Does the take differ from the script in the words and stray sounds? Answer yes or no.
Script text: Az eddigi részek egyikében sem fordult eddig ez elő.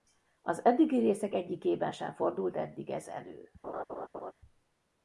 yes